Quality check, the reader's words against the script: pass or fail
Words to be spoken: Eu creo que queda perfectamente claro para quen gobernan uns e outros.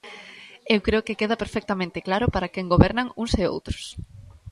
pass